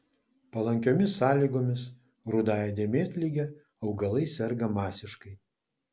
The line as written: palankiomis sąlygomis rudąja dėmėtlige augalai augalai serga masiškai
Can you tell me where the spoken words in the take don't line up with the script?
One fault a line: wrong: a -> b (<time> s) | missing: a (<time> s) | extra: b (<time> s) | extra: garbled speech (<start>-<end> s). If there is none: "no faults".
missing: augalai (4.3 s)